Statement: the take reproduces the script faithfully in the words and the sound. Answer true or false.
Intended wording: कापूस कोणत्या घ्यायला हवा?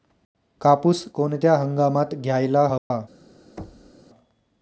false